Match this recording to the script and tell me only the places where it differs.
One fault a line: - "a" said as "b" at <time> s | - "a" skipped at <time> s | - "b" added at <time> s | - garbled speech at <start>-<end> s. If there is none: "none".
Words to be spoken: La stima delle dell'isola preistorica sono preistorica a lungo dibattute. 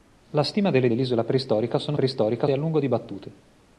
none